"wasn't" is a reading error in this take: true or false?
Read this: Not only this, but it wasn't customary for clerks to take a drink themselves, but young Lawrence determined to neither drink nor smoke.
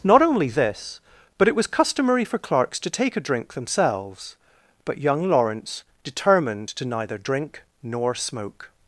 true